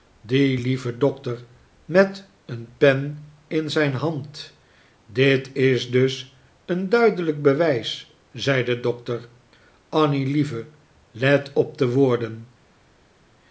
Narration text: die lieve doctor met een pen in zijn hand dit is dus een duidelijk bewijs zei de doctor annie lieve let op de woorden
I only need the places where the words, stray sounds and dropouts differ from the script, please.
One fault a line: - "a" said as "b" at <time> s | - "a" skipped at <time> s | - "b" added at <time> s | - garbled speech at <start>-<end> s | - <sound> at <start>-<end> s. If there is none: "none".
none